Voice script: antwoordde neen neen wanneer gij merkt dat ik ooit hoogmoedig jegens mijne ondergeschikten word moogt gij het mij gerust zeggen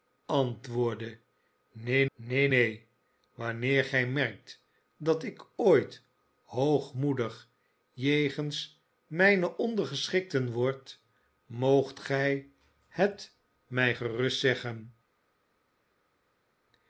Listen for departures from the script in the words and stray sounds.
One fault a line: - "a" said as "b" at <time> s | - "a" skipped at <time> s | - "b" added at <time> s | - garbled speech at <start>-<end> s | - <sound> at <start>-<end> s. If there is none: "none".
- "neen" added at 2.5 s